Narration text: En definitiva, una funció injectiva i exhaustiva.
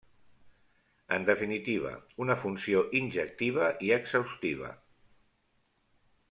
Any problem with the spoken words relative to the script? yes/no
no